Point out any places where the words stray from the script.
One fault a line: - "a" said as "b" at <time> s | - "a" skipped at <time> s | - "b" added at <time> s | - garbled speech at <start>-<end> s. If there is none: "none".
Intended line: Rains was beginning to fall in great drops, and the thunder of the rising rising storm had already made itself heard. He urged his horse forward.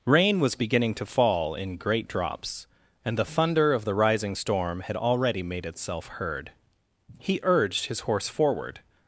- "Rains" said as "Rain" at 0.1 s
- "rising" skipped at 4.4 s